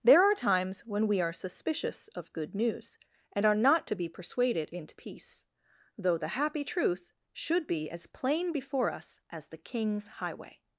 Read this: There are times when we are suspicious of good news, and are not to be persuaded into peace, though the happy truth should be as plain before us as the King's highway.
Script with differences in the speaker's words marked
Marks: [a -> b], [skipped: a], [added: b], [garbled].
There are times when we are suspicious of good news, and are not to be persuaded into peace, though the happy truth should be as plain before us as the King's highway.